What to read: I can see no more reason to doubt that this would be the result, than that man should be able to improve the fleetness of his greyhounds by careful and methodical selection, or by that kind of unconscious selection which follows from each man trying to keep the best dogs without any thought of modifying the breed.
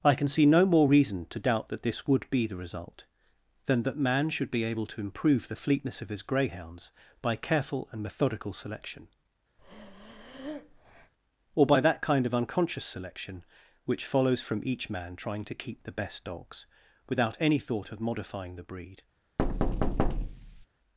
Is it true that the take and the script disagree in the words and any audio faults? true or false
true